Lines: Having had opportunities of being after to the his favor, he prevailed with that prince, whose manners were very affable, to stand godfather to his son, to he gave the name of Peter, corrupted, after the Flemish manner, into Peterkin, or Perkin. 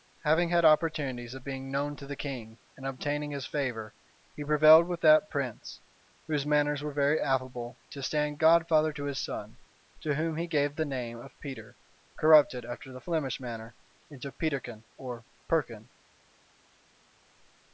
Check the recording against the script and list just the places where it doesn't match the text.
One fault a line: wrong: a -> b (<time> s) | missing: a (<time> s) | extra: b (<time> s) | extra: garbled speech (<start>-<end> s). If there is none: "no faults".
wrong: after -> known (1.7 s)
extra: king and obtaining (2.1 s)
extra: whom (10.2 s)